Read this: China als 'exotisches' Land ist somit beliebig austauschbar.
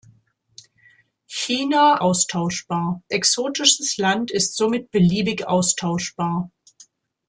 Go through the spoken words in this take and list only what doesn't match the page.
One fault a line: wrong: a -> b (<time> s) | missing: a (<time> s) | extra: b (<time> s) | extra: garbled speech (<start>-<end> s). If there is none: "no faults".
wrong: als -> austauschbar (2.0 s)